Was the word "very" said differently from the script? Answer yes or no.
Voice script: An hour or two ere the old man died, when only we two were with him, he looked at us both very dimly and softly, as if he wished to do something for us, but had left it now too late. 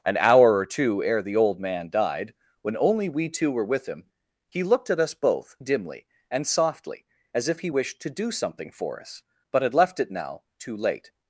yes